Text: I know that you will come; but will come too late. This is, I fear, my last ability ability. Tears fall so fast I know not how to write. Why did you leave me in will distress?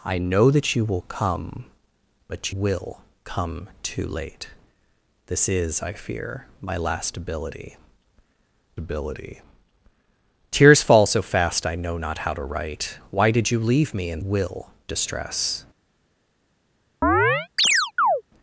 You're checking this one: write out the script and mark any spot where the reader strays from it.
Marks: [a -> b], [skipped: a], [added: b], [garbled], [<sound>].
I know that you will come; but will come too late. This is, I fear, my last ability ability. Tears fall so fast I know not how to write. Why did you leave me in will distress? [chirp]